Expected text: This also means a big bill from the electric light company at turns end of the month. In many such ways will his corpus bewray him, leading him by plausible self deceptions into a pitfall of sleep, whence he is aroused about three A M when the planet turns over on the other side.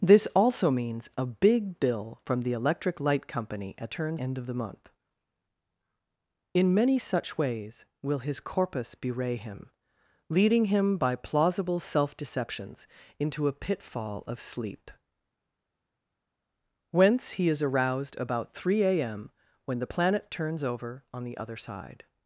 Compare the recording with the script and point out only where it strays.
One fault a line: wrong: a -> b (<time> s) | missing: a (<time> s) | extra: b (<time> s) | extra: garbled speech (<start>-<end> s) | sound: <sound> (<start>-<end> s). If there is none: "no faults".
no faults